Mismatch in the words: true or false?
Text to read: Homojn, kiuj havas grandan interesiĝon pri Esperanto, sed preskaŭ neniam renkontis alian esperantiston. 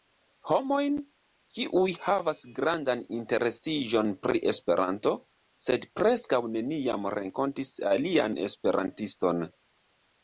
false